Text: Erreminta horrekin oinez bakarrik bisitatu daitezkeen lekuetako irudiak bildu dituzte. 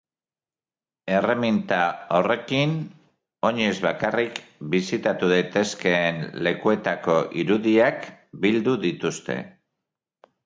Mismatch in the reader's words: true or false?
false